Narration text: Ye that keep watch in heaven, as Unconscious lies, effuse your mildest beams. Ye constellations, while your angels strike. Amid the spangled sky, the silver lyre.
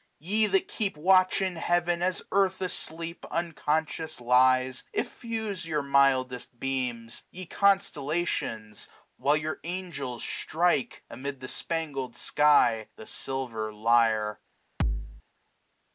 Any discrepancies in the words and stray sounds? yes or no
yes